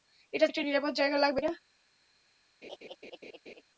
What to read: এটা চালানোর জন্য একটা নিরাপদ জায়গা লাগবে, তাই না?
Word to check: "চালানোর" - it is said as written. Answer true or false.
false